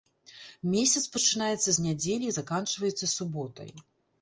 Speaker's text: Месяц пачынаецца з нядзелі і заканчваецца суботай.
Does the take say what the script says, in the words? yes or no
yes